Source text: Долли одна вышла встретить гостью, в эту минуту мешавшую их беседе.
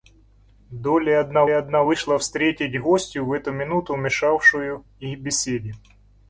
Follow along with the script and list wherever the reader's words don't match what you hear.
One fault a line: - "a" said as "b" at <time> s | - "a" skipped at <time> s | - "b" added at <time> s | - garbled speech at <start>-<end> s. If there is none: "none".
- "одна" added at 1.5 s